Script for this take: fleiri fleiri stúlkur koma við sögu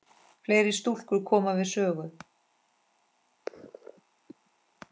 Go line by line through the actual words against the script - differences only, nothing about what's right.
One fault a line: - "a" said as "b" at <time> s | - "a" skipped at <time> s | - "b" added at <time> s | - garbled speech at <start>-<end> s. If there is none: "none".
- "fleiri" skipped at 0.7 s